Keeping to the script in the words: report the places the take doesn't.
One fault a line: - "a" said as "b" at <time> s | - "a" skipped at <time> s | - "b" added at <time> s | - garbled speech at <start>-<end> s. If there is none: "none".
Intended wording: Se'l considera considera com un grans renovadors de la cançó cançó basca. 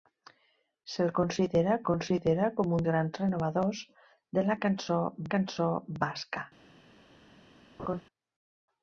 none